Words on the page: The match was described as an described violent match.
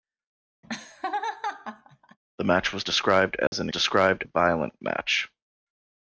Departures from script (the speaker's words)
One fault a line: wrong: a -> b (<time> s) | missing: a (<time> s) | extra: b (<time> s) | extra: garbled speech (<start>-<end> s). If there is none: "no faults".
no faults